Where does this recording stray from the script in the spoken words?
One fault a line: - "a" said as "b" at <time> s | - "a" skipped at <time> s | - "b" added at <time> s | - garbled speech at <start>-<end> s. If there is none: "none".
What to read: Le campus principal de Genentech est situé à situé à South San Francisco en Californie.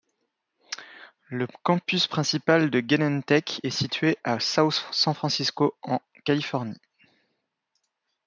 - "situé à" skipped at 4.4 s